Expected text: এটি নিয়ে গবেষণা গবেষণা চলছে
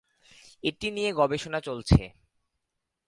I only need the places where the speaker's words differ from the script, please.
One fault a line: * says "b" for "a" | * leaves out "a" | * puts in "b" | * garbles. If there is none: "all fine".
* leaves out "গবেষণা"